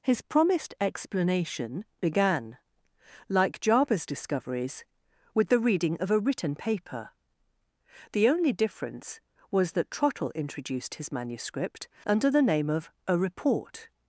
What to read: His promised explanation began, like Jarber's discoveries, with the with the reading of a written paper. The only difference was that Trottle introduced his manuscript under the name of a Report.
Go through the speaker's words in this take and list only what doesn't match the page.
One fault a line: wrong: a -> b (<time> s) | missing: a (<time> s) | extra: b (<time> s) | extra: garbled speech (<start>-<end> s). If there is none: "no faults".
missing: with the (5.6 s)